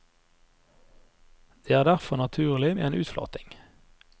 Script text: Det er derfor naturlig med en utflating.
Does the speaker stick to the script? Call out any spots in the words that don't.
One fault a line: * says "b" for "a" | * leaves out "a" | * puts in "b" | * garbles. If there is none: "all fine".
all fine